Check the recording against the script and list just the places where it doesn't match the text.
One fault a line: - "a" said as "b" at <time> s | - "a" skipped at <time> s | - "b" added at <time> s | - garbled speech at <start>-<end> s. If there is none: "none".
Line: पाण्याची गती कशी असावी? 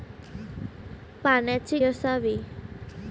- "गती कशी" skipped at 1.8 s